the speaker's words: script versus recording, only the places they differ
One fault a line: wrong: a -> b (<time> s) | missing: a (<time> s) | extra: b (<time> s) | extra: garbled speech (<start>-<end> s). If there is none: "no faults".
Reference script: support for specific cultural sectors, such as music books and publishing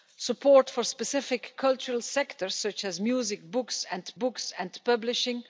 extra: books and (4.2 s)